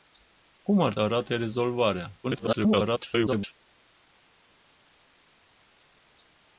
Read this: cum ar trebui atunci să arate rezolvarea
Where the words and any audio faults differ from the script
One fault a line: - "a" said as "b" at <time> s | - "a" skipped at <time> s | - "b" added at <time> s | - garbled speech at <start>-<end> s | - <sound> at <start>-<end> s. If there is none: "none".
- "trebui atunci să" skipped at 0.9 s
- garbled speech at 2.2-3.5 s